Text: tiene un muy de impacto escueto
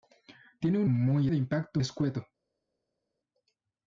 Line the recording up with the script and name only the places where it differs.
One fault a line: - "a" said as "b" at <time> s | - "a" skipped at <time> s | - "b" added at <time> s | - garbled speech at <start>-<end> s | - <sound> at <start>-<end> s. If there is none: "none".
none